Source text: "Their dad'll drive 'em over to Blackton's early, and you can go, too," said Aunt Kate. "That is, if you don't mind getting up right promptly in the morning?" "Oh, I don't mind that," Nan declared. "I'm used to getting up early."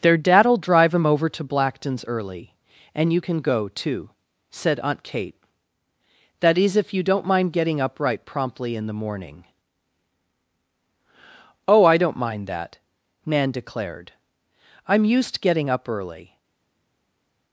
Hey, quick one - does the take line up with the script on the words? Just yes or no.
no